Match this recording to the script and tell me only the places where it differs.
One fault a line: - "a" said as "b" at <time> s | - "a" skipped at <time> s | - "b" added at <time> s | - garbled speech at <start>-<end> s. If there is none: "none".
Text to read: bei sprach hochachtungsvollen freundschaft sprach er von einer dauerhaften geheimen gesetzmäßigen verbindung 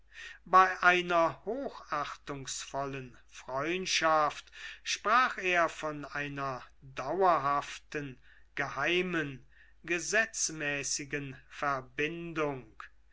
- "sprach" said as "einer" at 0.8 s